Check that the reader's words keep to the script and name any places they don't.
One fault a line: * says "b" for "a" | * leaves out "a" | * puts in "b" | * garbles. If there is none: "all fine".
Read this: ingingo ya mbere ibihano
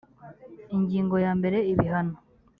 all fine